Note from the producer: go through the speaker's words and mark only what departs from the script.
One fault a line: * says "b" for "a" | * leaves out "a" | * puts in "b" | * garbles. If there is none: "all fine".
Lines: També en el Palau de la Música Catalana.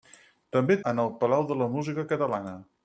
all fine